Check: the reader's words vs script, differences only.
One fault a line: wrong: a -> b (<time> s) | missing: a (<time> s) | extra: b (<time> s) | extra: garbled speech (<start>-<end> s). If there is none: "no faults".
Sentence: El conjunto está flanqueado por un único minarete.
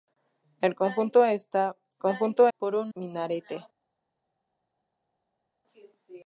wrong: flanqueado -> conjunto (2.0 s)
missing: único (2.9 s)